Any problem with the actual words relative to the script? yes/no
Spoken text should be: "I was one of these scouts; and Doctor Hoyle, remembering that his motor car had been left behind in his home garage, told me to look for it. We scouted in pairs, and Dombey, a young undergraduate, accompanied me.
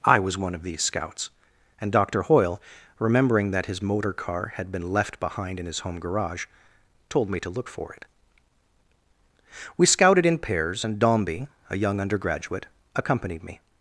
no